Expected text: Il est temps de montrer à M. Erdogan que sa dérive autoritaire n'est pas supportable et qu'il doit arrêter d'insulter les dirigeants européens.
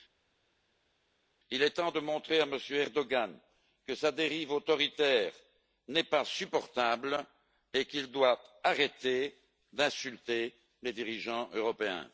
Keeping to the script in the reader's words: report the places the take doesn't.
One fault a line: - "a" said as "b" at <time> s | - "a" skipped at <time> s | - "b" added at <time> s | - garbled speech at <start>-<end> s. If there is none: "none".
none